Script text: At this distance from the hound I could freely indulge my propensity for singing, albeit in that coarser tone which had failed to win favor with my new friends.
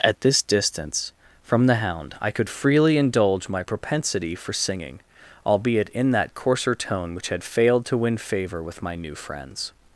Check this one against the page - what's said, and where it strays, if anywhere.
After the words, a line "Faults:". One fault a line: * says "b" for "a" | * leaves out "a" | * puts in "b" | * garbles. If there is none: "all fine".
At this distance from the hound I could freely indulge my propensity for singing, albeit in that coarser tone which had failed to win favor with my new friends.
Faults:
all fine